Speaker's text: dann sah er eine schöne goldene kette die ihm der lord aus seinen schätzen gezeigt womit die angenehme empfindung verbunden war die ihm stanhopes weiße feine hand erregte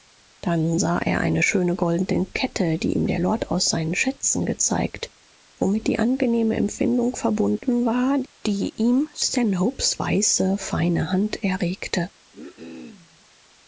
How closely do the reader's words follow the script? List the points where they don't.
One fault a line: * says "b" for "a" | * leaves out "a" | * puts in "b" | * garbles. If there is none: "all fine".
all fine